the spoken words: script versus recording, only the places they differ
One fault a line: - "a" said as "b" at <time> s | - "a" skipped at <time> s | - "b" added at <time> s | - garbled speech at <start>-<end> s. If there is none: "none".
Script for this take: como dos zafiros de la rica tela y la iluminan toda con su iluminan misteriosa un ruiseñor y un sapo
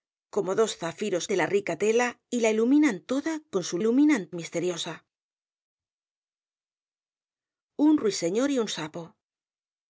none